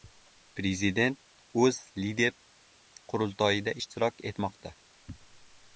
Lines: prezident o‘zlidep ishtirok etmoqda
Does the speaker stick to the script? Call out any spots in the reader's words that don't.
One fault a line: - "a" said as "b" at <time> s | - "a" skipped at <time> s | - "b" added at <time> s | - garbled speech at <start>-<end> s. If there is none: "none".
- "qurultoyida" added at 3.1 s